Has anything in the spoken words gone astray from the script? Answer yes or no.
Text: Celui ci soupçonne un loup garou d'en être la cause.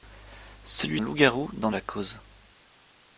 yes